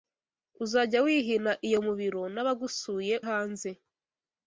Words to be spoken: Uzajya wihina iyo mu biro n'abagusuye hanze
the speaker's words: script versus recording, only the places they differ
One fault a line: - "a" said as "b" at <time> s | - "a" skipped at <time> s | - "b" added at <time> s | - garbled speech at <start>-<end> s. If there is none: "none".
none